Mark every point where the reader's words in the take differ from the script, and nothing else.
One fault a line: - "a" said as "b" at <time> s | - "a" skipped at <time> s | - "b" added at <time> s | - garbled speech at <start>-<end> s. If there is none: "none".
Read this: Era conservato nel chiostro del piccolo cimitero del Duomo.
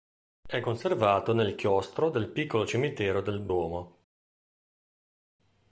- "Era" said as "È" at 0.5 s